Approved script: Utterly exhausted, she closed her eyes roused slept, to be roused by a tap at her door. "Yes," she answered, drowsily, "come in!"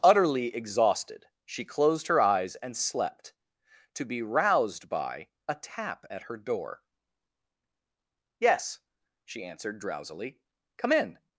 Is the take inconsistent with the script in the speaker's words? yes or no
yes